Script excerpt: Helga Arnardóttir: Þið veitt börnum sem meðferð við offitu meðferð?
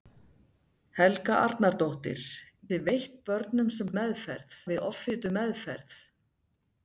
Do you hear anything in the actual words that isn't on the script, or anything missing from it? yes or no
no